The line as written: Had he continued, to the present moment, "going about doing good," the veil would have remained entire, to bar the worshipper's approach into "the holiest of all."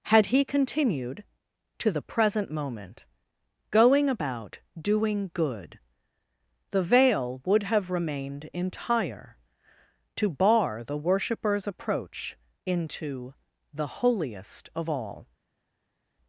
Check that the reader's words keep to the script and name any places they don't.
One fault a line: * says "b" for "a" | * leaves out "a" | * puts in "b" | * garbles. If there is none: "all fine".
all fine